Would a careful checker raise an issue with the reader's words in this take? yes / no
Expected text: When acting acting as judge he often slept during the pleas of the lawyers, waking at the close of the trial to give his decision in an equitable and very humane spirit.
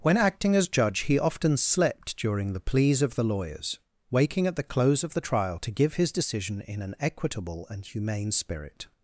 yes